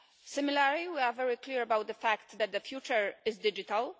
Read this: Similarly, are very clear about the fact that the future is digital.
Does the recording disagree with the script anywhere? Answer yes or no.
yes